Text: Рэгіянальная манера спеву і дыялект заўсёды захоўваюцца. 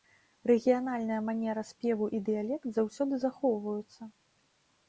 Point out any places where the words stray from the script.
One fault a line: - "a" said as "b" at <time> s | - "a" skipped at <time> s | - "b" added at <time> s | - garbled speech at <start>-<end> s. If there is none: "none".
none